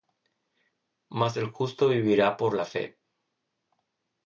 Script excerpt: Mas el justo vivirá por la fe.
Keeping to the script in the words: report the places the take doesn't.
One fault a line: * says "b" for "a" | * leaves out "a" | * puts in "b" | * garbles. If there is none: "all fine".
all fine